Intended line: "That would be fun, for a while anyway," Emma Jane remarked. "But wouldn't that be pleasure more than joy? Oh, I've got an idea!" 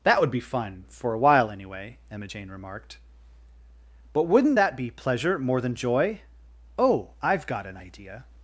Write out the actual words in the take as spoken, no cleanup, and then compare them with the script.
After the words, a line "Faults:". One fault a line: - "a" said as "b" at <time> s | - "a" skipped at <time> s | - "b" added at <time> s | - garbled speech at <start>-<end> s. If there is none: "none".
"That would be fun, for a while anyway," Emma Jane remarked. "But wouldn't that be pleasure more than joy? Oh, I've got an idea!"
Faults:
none